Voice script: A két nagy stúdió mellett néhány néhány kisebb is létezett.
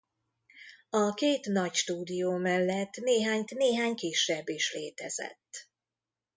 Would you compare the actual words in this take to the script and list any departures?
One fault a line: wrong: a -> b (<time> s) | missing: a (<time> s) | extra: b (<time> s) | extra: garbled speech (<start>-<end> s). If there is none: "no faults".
no faults